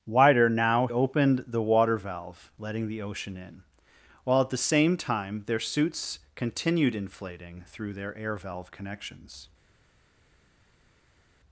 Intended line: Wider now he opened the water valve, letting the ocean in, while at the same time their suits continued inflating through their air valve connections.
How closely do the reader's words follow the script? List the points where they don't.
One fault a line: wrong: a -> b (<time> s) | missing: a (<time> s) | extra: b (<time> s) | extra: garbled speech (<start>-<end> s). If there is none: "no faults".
missing: he (0.9 s)